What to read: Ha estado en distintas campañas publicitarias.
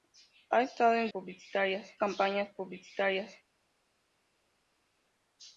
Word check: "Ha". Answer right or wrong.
right